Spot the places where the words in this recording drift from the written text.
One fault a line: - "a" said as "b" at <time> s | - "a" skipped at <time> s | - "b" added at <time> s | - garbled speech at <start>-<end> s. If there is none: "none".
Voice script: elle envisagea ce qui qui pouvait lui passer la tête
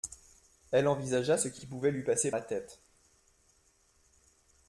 none